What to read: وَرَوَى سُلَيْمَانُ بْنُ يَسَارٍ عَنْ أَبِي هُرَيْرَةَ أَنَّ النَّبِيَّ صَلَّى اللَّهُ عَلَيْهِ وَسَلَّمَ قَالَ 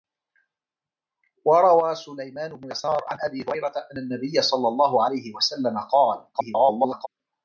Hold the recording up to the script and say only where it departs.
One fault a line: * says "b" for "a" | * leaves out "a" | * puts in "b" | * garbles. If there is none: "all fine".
* garbles